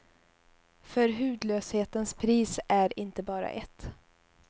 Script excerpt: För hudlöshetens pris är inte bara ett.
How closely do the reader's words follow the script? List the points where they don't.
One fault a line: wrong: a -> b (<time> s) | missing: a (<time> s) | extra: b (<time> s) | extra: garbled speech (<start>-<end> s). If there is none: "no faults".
no faults